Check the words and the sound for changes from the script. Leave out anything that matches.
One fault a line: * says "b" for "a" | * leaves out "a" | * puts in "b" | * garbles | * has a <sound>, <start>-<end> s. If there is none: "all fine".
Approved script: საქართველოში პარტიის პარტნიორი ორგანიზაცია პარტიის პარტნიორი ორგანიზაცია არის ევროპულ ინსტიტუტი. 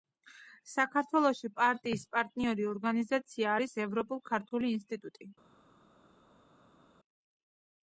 * leaves out "პარტიის პარტნიორი ორგანიზაცია"
* puts in "ქართული"